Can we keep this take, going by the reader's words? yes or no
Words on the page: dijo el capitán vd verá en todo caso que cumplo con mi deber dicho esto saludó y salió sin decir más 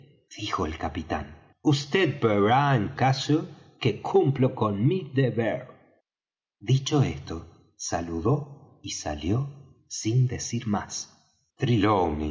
no